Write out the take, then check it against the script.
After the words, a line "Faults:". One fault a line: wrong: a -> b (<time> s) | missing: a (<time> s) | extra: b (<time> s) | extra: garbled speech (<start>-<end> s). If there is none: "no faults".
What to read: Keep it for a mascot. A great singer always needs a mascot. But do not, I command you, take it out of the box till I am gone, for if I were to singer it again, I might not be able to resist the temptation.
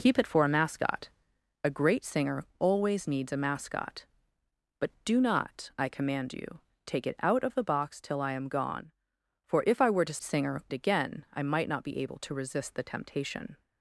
Keep it for a mascot. A great singer always needs a mascot. But do not, I command you, take it out of the box till I am gone, for if I were to singer it again, I might not be able to resist the temptation.
Faults:
no faults